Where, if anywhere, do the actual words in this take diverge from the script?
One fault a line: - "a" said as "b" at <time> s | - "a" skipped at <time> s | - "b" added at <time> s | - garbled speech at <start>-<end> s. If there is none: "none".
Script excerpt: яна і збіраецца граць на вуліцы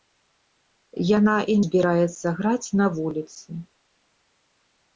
none